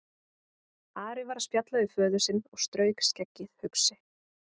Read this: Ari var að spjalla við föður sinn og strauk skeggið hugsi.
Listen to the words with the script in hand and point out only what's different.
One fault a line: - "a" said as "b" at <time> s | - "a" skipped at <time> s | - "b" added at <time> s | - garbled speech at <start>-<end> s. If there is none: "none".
none